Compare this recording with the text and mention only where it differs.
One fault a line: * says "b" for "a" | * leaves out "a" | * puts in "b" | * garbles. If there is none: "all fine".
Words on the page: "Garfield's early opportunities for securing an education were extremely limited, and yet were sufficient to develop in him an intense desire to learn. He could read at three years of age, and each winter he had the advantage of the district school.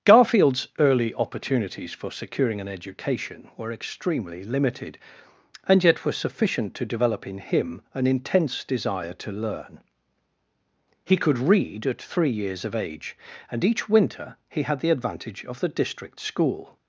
all fine